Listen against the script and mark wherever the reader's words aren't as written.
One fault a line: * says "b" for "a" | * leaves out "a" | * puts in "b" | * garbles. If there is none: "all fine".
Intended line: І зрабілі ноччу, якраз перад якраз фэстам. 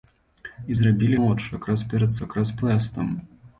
all fine